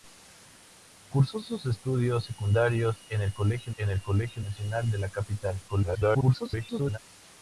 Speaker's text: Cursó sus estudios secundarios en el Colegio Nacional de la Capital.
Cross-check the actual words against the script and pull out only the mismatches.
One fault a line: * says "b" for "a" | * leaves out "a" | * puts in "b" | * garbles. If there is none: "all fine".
* puts in "en el Colegio"
* garbles